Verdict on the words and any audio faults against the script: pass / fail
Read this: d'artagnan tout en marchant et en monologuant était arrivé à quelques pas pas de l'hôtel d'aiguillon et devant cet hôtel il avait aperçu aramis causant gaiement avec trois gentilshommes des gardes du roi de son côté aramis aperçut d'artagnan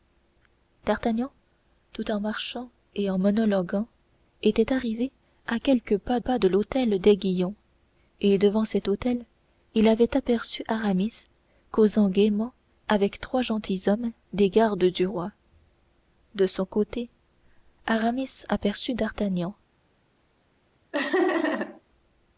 fail